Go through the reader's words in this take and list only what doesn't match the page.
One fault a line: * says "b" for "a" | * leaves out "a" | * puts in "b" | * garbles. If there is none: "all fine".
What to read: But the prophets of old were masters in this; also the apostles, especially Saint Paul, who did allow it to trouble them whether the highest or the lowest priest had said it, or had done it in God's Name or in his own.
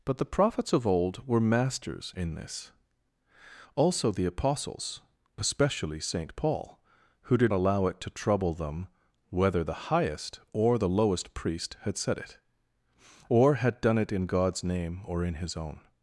all fine